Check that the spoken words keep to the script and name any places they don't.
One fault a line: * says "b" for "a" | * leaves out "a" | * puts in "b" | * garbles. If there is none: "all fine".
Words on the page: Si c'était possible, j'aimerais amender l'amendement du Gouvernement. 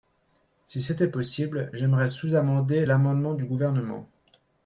* puts in "sous"